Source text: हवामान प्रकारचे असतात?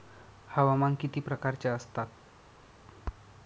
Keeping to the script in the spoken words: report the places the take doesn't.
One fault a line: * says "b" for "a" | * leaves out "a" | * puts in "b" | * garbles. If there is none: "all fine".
* puts in "किती"